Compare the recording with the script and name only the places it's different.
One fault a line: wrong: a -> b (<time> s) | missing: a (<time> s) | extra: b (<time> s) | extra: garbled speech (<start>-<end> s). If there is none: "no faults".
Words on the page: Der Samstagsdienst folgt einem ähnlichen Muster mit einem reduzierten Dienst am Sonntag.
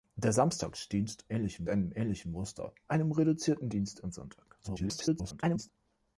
wrong: folgt -> ähnlichen (1.3 s)
missing: mit (2.7 s)
extra: garbled speech (4.6-5.7 s)